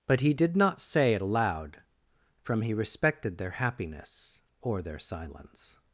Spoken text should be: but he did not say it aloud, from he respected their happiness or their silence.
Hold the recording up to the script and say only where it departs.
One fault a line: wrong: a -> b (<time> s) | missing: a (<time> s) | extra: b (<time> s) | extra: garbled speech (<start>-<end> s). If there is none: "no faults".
no faults